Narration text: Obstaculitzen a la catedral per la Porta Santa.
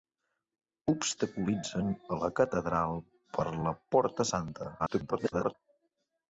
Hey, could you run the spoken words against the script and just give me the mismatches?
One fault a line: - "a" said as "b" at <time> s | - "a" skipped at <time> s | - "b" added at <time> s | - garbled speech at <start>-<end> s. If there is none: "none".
- garbled speech at 4.8-5.5 s